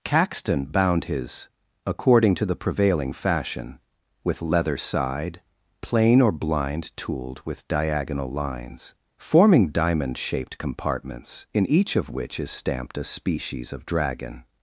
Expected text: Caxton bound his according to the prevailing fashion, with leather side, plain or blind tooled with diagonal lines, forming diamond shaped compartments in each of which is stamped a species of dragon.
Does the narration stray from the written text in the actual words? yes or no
no